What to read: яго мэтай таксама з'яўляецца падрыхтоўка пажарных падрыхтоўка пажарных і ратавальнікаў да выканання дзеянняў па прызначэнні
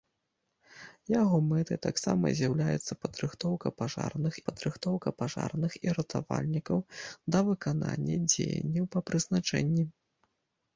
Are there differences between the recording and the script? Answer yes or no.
no